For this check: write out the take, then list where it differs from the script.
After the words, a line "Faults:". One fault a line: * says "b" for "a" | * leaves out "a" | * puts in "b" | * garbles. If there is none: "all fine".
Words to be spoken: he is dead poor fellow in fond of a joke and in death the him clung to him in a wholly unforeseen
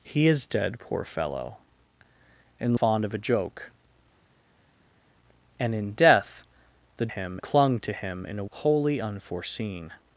he is dead poor fellow in fond of a joke and in death the him clung to him in a wholly unforeseen
Faults:
all fine